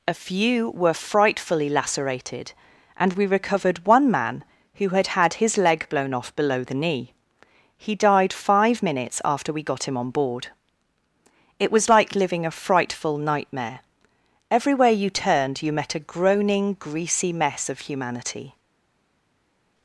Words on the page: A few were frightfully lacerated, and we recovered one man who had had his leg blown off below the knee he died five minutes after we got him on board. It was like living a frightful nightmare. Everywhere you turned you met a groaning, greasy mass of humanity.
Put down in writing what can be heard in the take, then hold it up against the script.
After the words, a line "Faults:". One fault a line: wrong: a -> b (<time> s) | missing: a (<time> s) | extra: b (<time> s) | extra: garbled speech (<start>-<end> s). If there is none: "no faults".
A few were frightfully lacerated, and we recovered one man who had had his leg blown off below the knee he died five minutes after we got him on board. It was like living a frightful nightmare. Everywhere you turned you met a groaning, greasy mess of humanity.
Faults:
wrong: mass -> mess (17.3 s)